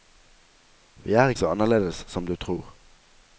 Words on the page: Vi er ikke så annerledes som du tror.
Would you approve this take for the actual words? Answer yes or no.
no